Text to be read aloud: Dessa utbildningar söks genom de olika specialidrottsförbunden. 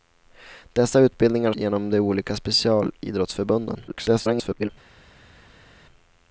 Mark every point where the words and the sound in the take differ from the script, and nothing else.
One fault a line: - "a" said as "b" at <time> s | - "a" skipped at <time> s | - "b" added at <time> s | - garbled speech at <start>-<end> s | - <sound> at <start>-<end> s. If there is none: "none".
- "söks" skipped at 1.5 s
- garbled speech at 3.9-4.7 s